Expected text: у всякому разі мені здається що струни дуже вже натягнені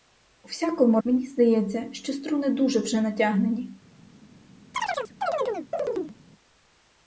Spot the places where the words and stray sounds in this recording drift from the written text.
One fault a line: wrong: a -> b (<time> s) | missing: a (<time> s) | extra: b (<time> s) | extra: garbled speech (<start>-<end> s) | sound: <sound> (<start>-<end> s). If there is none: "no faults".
missing: разі (1.0 s)
sound: chirp (4.7-6.2 s)